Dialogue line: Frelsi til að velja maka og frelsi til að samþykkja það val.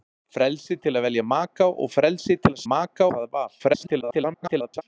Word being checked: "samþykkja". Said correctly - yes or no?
no